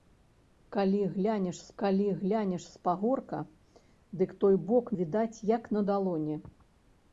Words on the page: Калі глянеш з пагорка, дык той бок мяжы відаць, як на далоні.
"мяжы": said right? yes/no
no